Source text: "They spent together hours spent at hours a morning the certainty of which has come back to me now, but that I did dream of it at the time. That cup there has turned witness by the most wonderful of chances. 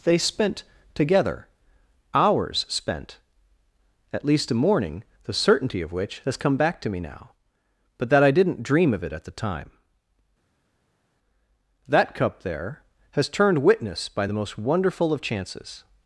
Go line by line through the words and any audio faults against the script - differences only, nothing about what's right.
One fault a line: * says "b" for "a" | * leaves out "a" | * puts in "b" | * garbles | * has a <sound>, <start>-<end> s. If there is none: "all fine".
* says "least" for "hours"
* says "didn't" for "did"